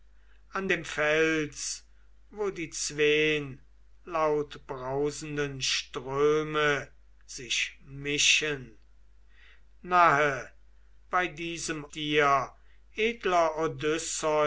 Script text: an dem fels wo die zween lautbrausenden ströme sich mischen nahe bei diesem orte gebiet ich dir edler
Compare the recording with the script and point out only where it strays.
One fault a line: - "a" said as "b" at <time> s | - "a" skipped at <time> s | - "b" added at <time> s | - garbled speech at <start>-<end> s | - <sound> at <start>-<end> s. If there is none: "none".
- "orte gebiet ich" skipped at 11.9 s